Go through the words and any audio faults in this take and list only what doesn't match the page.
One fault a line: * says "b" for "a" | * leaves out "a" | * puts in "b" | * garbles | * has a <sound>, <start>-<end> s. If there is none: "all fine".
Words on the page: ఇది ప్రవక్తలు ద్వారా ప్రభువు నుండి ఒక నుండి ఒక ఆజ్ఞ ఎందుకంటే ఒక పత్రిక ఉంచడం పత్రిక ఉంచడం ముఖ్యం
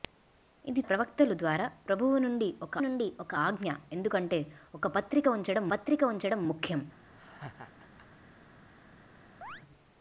* has a laugh, 7.2-8.1 s
* has a chirp, 9.4-9.6 s